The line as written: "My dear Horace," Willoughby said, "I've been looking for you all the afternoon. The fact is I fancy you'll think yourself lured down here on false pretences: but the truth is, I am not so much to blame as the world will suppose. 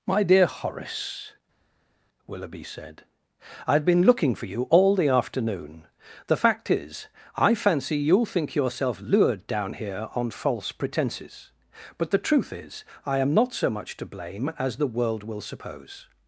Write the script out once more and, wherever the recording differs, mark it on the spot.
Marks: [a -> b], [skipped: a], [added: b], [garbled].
"My dear Horace," Willoughby said, "I've been looking for you all the afternoon. The fact is I fancy you'll think yourself lured down here on false pretences: but the truth is, I am not so much to blame as the world will suppose.